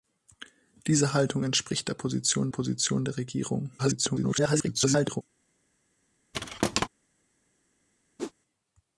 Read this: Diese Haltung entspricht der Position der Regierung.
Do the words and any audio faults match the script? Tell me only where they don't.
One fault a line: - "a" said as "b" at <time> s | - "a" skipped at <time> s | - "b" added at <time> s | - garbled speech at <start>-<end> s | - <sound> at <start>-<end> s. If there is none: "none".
- "Position" added at 2.5 s
- garbled speech at 3.8-5.2 s
- thud at 6.3-6.9 s
- whoosh at 8.2-8.3 s